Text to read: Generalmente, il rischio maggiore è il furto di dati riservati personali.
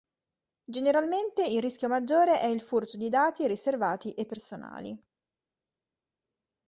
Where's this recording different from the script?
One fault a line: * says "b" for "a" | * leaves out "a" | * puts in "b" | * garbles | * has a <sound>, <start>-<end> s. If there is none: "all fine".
* puts in "e"